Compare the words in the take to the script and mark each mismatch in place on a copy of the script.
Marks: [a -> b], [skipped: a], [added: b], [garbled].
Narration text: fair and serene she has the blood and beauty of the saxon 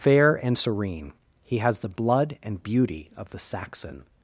fair and serene [she -> he] has the blood and beauty of the saxon